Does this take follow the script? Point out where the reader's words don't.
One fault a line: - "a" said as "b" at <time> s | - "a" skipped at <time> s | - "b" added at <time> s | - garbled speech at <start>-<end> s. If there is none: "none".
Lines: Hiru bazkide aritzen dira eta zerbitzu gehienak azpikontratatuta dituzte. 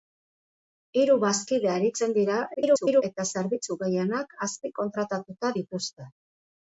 - garbled speech at 2.5-3.0 s